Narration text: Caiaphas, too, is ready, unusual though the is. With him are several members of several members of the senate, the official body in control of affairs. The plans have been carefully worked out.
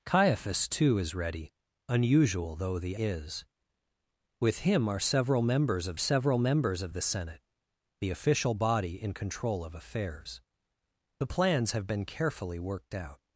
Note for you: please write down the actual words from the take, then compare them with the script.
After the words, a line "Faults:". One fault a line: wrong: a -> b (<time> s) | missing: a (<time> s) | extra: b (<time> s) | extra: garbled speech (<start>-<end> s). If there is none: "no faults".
Caiaphas, too, is ready, unusual though the is. With him are several members of several members of the senate, the official body in control of affairs. The plans have been carefully worked out.
Faults:
no faults